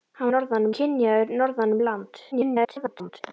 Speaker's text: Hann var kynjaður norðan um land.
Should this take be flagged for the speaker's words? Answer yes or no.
yes